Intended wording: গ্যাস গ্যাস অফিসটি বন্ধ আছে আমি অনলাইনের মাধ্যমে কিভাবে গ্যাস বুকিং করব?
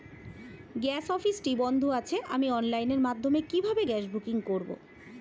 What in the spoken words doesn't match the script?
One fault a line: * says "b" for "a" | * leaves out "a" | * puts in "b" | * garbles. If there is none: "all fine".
* leaves out "গ্যাস"